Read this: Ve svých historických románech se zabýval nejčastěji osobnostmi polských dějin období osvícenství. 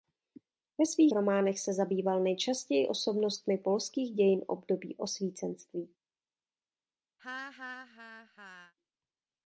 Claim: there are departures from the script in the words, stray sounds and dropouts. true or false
true